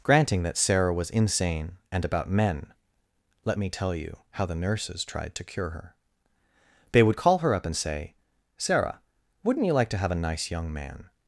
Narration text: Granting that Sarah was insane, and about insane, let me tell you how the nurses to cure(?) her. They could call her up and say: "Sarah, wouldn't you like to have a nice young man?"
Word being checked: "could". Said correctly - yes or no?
no